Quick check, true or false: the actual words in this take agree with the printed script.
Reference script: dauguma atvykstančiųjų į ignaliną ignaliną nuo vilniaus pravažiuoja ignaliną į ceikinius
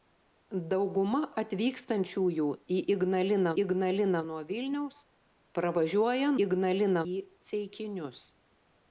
true